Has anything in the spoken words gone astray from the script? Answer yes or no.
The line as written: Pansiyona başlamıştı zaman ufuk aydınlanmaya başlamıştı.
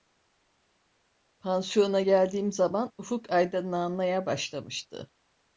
yes